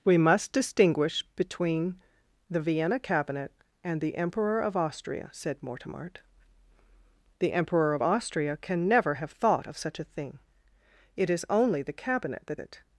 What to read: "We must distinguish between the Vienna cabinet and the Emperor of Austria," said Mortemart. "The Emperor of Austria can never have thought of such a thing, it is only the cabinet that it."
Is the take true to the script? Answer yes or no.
yes